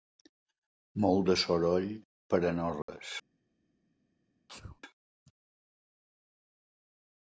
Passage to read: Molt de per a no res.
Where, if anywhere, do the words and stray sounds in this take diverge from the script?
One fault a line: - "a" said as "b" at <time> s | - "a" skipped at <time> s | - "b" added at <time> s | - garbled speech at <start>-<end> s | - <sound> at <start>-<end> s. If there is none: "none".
- "soroll" added at 1.4 s
- dropout at 2.8-2.9 s
- sneeze at 4.5-4.8 s